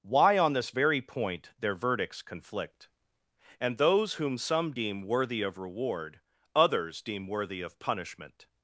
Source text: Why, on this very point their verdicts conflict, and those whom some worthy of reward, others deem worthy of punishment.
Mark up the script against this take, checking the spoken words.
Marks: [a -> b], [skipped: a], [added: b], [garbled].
Why, on this very point their verdicts conflict, and those whom some [added: deem] worthy of reward, others deem worthy of punishment.